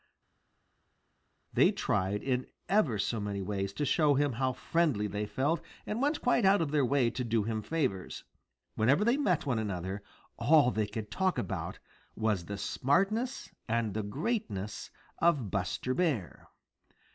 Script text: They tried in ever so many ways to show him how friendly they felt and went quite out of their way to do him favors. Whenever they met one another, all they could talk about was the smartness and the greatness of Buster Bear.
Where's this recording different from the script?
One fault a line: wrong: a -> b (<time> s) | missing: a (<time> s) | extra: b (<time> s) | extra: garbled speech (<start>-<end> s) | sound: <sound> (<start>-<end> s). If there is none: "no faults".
no faults